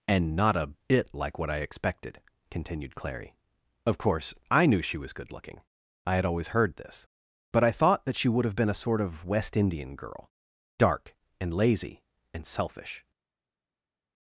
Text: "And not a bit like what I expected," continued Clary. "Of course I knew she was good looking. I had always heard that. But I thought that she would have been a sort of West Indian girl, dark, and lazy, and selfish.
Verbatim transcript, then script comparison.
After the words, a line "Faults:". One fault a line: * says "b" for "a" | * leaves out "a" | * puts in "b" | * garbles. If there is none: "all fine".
"And not a bit like what I expected," continued Clary. "Of course I knew she was good looking. I had always heard this. But I thought that she would have been a sort of West Indian girl, dark, and lazy, and selfish.
Faults:
* says "this" for "that"